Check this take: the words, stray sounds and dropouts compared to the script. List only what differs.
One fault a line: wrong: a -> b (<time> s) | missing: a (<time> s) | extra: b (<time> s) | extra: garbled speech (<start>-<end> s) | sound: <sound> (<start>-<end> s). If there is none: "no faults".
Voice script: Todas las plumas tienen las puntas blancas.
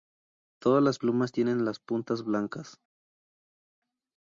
no faults